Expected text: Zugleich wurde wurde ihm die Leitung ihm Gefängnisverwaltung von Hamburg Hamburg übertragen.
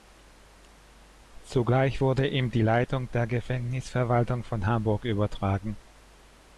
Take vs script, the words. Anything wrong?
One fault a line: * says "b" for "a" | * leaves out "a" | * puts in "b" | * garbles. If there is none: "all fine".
* leaves out "wurde"
* says "der" for "ihm"
* leaves out "Hamburg"